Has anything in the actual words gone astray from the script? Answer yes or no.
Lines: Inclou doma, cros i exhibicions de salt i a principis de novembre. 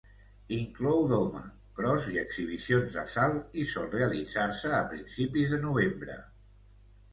yes